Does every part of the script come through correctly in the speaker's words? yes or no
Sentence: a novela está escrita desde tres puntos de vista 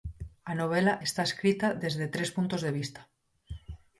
yes